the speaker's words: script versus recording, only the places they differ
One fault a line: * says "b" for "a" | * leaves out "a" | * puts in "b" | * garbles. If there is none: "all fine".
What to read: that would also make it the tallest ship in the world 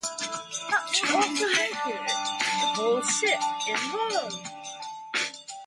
all fine